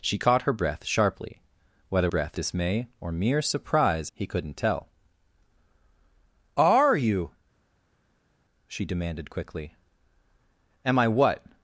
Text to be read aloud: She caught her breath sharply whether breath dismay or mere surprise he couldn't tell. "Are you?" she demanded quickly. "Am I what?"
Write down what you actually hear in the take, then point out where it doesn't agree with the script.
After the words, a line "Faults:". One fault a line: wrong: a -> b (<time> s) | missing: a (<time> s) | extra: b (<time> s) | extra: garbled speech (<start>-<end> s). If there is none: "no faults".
She caught her breath sharply whether breath dismay or mere surprise he couldn't tell. "Are you?" she demanded quickly. "Am I what?"
Faults:
no faults